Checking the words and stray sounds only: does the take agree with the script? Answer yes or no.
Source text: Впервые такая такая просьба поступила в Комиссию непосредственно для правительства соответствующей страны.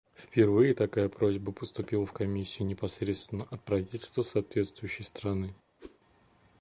no